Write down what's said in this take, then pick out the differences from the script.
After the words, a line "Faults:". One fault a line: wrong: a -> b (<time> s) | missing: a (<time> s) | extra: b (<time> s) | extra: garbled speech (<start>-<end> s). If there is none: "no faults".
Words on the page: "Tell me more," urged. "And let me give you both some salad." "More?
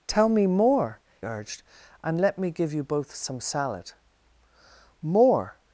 "Tell me more," urged. "And let me give you both some salad." "More?
Faults:
no faults